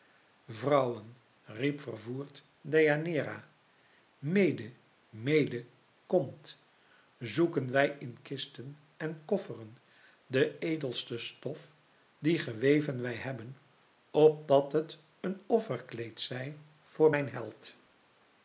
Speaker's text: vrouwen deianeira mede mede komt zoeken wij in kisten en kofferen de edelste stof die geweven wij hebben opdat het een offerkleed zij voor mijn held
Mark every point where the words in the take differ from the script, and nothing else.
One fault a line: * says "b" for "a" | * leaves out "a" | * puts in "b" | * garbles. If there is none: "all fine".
* puts in "riep vervoerd"